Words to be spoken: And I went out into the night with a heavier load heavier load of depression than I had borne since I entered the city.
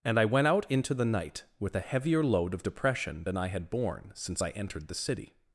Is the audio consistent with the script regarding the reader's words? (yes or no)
no